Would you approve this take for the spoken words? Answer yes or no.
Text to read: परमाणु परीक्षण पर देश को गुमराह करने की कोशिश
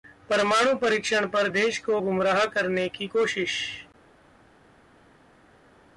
yes